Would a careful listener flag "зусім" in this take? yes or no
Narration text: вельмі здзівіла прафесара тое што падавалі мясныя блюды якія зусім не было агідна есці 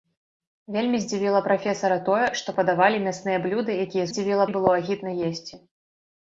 yes